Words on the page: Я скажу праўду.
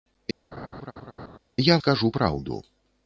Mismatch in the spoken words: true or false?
false